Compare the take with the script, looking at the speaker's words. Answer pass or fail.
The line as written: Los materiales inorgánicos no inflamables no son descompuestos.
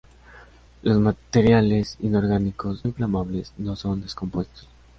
fail